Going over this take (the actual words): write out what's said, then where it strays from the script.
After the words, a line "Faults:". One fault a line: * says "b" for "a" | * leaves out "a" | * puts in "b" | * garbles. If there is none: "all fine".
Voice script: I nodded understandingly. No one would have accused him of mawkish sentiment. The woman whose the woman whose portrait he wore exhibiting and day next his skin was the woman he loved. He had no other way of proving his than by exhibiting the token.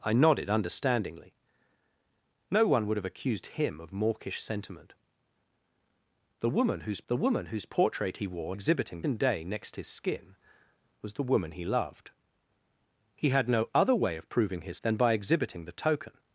I nodded understandingly. No one would have accused him of mawkish sentiment. The woman whose the woman whose portrait he wore exhibiting and day next his skin was the woman he loved. He had no other way of proving his than by exhibiting the token.
Faults:
all fine